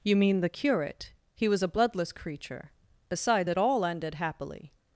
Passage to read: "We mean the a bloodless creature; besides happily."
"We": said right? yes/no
no